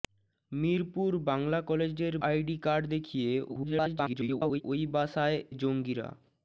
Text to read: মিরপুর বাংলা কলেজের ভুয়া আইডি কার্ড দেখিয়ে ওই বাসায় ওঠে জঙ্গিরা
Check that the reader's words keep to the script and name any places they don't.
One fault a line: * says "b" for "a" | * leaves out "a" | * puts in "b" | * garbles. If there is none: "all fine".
* leaves out "ভুয়া"
* garbles
* leaves out "ওঠে"